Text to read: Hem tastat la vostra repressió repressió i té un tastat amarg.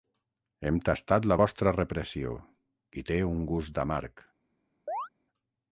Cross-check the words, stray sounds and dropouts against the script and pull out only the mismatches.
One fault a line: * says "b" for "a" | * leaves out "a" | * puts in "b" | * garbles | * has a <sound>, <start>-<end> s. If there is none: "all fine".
* leaves out "repressió"
* says "gust" for "tastat"
* has a chirp, 4.9-5.1 s